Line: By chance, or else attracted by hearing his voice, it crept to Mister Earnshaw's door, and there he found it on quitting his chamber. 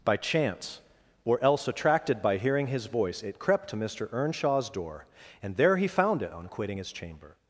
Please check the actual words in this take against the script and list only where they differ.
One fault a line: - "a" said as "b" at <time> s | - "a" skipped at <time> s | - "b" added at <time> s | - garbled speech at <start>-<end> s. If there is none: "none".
none